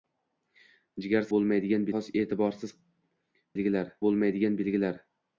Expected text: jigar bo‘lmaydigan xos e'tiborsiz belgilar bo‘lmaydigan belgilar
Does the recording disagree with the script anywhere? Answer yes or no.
no